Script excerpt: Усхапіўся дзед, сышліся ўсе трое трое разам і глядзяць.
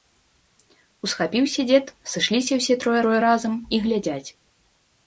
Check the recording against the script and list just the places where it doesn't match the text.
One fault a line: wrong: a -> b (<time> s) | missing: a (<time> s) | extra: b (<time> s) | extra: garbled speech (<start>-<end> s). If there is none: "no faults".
no faults